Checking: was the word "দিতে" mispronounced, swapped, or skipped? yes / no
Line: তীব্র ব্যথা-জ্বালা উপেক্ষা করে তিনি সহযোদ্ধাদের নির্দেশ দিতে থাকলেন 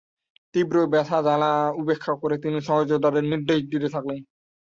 no